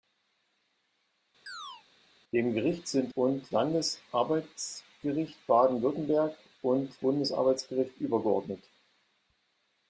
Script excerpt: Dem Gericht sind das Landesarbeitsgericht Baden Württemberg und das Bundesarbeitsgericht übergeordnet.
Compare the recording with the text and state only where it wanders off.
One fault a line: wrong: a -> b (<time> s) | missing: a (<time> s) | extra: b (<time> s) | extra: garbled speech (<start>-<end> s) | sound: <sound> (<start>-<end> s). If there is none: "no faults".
sound: chirp (1.5-1.8 s)
wrong: das -> und (3.1 s)
missing: das (7.0 s)